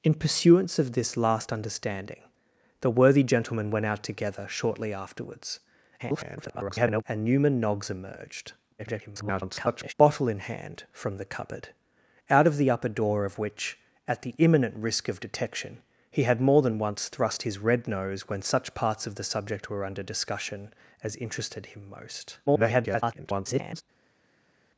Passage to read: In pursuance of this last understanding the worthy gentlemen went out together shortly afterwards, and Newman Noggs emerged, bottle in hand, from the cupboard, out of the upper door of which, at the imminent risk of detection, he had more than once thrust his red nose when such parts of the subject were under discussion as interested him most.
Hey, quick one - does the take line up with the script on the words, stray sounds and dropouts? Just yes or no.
no